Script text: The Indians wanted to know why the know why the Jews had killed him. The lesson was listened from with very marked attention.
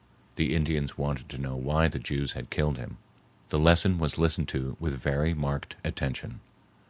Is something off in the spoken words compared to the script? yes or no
yes